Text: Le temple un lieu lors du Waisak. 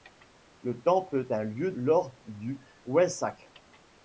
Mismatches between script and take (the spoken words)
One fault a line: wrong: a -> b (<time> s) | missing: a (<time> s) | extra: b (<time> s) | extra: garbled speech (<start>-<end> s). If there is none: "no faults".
no faults